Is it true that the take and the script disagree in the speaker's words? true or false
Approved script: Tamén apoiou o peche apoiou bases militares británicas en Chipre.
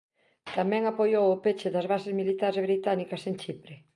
true